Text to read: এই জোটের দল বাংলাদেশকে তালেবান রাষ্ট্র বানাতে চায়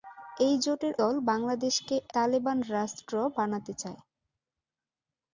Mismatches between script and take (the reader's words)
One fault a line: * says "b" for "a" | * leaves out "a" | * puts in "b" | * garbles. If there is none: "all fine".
all fine